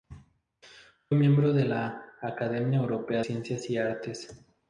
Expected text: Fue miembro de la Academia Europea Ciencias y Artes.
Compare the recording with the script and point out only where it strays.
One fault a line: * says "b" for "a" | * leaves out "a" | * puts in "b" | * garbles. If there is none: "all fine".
all fine